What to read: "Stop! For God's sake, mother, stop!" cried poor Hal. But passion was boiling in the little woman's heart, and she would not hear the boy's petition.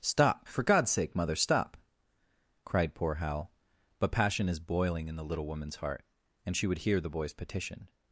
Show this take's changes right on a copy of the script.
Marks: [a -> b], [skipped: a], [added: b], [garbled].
"Stop! For God's sake, mother, stop!" cried poor Hal. But passion [was -> is] boiling in the little woman's heart, and she would [skipped: not] hear the boy's petition.